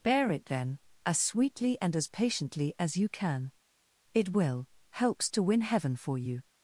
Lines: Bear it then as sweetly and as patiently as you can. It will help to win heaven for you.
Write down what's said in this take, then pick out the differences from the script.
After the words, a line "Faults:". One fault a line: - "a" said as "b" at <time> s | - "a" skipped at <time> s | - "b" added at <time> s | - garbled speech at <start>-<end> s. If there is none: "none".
Bear it then as sweetly and as patiently as you can. It will helps to win heaven for you.
Faults:
- "help" said as "helps" at 4.9 s